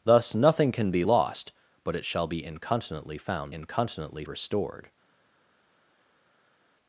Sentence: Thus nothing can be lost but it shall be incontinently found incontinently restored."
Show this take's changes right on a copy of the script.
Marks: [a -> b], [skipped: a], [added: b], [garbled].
Thus nothing can be lost but it shall be incontinently found incontinently restored."